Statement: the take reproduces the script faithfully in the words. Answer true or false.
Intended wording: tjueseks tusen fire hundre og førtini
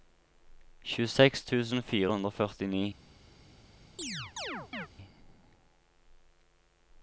true